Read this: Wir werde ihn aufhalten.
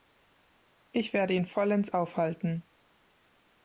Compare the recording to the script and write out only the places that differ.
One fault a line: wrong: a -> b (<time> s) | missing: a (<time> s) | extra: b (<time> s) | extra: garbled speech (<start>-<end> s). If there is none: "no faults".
wrong: Wir -> Ich (0.9 s)
extra: vollends (1.4 s)